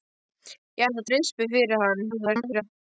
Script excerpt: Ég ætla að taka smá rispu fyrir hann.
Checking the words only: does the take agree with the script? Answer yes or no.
no